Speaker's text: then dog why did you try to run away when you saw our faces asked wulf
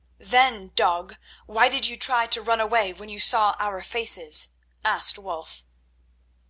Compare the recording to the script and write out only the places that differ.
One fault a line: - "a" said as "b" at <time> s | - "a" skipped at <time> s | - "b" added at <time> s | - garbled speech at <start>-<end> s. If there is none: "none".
none